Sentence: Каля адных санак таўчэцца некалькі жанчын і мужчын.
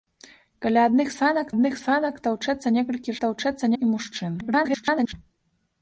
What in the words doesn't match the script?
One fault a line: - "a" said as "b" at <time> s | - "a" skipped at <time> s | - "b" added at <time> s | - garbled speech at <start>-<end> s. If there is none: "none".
- "адных санак" added at 1.5 s
- "жанчын" said as "таўчэцца" at 3.3 s
- garbled speech at 4.4-5.1 s